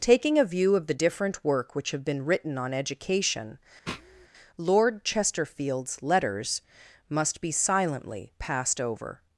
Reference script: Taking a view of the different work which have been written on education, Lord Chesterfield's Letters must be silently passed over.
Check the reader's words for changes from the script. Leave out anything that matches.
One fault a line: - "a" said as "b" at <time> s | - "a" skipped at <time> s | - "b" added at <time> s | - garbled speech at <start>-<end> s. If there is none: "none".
none